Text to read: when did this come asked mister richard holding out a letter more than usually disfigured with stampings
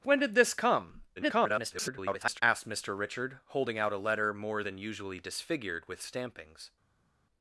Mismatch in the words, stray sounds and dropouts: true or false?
true